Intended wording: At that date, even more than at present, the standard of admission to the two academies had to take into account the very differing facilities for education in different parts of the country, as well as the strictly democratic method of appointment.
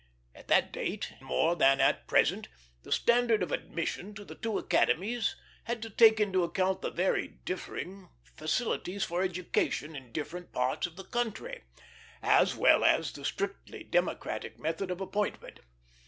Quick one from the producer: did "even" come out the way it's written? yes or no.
no